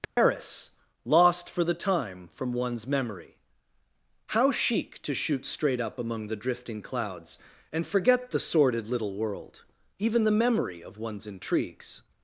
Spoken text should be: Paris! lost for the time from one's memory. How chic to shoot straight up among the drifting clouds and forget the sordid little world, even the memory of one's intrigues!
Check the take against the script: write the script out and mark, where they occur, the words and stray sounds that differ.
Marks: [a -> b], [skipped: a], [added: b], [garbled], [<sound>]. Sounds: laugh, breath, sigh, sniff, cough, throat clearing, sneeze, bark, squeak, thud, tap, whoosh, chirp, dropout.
Paris! [dropout] lost for the time from one's memory. How chic to shoot straight up among the drifting clouds and forget the sordid little world, even the memory of one's intrigues!